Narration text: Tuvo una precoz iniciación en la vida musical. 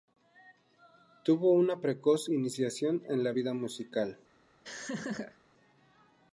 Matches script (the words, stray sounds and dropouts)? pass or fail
fail